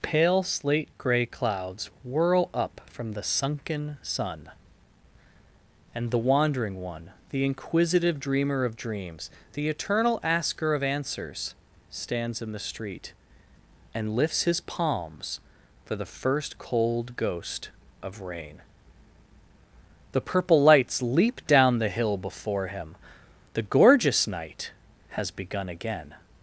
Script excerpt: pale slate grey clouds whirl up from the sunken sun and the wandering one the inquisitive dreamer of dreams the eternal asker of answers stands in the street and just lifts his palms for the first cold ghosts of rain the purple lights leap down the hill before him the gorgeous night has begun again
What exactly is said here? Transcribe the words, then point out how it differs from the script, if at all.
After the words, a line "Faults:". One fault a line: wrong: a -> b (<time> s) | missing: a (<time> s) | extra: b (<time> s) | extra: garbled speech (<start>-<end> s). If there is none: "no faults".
pale slate grey clouds whirl up from the sunken sun and the wandering one the inquisitive dreamer of dreams the eternal asker of answers stands in the street and lifts his palms for the first cold ghost of rain the purple lights leap down the hill before him the gorgeous night has begun again
Faults:
missing: just (14.2 s)
wrong: ghosts -> ghost (17.1 s)